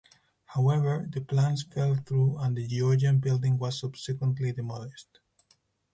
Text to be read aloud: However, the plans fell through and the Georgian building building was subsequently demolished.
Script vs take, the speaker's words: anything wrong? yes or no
yes